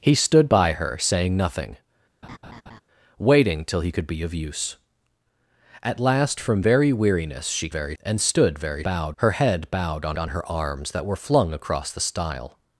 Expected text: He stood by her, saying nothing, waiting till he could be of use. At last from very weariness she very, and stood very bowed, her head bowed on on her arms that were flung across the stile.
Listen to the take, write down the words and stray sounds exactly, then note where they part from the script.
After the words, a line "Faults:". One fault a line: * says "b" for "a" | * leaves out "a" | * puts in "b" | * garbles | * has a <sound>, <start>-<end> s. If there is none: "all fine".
He stood by her, saying nothing, waiting till he could be of use. At last from very weariness she very, and stood very bowed, her head bowed on on her arms that were flung across the stile.
Faults:
* has a laugh, 2.2-2.8 s